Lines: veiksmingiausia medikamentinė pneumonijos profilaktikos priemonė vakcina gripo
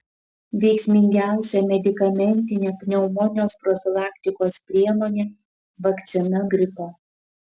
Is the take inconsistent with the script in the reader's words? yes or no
no